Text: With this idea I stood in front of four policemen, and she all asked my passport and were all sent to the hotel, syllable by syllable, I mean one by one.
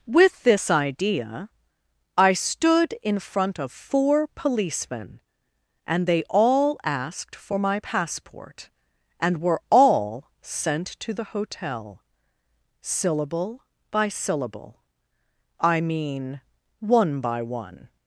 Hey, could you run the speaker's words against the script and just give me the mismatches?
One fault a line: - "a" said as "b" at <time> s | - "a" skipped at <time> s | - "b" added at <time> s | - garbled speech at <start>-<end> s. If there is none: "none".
- "she" said as "they" at 6.1 s
- "for" added at 7.4 s